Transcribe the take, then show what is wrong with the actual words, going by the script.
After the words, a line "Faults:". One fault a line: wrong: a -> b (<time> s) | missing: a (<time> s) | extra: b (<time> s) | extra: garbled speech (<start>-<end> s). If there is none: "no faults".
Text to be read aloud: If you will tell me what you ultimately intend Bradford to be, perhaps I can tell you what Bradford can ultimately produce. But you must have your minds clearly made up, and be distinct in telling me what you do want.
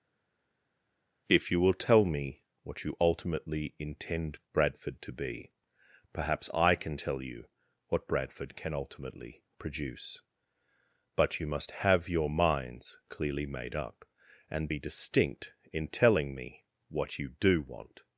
If you will tell me what you ultimately intend Bradford to be, perhaps I can tell you what Bradford can ultimately produce. But you must have your minds clearly made up, and be distinct in telling me what you do want.
Faults:
no faults